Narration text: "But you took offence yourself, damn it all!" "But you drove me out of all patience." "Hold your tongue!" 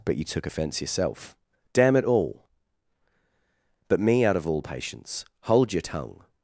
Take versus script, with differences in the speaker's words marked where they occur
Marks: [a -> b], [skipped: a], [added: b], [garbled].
"But you took offence yourself, damn it all!" "But [skipped: you drove] me out of all patience." "Hold your tongue!"